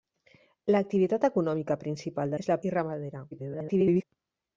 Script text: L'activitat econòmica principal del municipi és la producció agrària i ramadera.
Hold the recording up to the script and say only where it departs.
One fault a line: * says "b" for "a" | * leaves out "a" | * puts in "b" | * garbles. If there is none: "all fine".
* leaves out "del municipi"
* leaves out "producció agrària"
* garbles